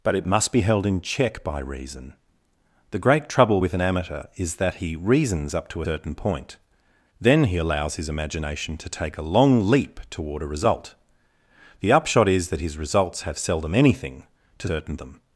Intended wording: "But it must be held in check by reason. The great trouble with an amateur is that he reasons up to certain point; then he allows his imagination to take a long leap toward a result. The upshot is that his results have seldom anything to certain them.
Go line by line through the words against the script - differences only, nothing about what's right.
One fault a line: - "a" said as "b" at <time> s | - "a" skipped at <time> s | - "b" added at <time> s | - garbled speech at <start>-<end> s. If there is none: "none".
none